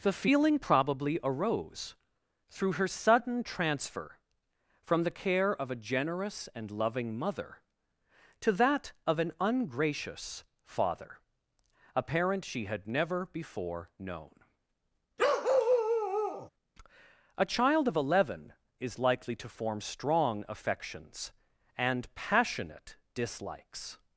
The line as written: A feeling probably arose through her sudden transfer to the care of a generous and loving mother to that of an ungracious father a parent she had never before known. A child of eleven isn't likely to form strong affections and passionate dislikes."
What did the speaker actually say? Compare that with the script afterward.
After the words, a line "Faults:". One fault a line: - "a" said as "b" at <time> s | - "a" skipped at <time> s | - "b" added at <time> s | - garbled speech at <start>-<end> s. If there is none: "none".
The feeling probably arose through her sudden transfer from the care of a generous and loving mother to that of an ungracious father a parent she had never before known. A child of eleven is likely to form strong affections and passionate dislikes."
Faults:
- "A" said as "The" at 0.0 s
- "to" said as "from" at 4.8 s
- "isn't" said as "is" at 18.8 s